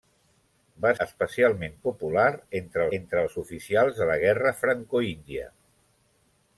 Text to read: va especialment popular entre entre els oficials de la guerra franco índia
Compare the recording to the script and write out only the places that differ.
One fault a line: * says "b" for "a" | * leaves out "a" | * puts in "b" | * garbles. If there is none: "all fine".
all fine